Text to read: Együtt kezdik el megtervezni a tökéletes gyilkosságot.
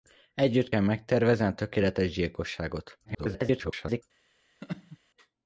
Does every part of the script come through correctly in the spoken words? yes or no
no